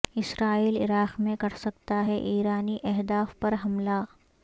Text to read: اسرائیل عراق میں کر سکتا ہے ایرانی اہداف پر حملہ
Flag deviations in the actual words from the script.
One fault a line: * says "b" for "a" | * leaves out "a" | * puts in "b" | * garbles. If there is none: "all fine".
all fine